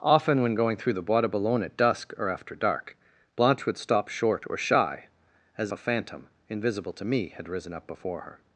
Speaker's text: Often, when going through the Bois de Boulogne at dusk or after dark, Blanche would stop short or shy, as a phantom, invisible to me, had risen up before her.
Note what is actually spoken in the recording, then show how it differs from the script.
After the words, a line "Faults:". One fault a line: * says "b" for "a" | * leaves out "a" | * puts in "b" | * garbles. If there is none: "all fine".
Often, when going through the Bois de Boulogne at dusk or after dark, Blanche would stop short or shy, as a phantom, invisible to me, had risen up before her.
Faults:
all fine